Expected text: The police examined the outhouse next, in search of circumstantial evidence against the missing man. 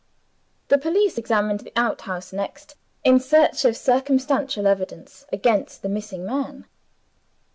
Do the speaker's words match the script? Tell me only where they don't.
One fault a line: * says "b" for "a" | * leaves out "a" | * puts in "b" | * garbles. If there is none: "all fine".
all fine